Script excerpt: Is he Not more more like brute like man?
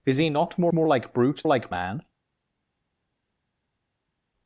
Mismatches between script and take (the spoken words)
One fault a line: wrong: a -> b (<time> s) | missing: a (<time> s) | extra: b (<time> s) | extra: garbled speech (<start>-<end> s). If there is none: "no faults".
no faults